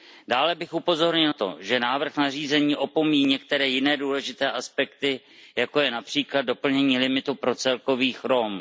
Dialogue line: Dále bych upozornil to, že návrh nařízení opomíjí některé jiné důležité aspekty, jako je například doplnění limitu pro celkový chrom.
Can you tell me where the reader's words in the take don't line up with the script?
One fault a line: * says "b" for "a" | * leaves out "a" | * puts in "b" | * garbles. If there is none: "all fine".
all fine